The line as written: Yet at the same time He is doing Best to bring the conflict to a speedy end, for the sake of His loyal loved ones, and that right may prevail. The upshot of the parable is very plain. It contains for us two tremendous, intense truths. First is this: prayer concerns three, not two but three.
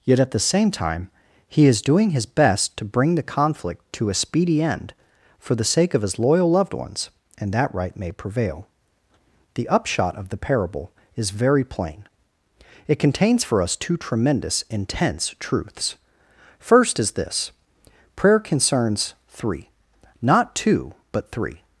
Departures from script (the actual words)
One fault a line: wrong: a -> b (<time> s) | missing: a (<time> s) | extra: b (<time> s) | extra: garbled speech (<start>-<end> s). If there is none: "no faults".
extra: His (2.1 s)